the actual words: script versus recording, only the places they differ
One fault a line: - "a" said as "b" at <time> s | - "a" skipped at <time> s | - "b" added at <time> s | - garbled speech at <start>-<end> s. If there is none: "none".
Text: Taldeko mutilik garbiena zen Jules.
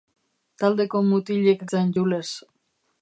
- "garbiena" skipped at 1.6 s